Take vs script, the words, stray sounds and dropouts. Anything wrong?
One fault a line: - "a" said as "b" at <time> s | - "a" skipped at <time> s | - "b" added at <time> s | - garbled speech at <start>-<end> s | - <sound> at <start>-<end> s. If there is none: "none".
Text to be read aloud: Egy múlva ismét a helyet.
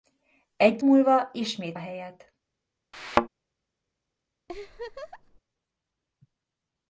- thud at 2.9-3.3 s
- laugh at 4.5-5.4 s